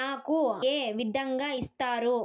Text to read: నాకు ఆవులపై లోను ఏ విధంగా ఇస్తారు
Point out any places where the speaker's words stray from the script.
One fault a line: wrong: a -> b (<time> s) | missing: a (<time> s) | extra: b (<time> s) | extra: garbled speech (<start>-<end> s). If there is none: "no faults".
missing: ఆవులపై లోను (0.4 s)